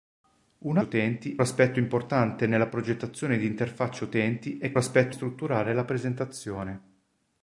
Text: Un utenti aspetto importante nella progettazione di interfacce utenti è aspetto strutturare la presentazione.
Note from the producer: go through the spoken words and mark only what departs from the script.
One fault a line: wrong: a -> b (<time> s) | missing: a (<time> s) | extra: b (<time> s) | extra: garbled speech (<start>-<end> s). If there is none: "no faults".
no faults